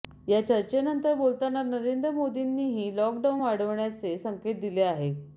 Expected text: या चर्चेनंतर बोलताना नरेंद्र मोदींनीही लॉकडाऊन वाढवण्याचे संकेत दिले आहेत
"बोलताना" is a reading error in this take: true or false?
false